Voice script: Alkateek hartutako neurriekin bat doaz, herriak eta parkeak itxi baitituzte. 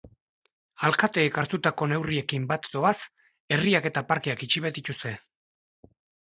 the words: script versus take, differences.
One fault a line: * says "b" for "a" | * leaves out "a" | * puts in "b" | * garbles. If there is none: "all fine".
all fine